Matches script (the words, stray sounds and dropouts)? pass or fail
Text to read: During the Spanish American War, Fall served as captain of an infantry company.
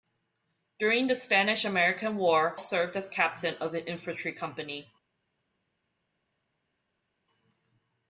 fail